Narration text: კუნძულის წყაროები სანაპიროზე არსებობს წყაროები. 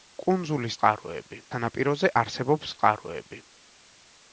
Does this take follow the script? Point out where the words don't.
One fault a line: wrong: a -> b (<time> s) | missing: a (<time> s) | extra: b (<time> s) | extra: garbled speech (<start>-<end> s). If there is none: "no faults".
no faults